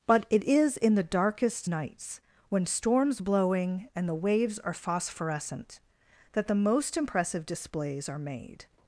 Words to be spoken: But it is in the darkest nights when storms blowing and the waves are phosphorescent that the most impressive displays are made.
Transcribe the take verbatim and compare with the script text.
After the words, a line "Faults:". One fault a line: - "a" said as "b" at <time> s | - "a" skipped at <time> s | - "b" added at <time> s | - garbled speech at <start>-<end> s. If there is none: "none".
But it is in the darkest nights when storms blowing and the waves are phosphorescent that the most impressive displays are made.
Faults:
none